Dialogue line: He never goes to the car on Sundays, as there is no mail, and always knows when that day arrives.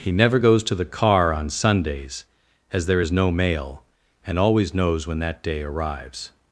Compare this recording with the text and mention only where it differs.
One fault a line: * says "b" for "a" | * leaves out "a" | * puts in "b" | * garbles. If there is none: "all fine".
all fine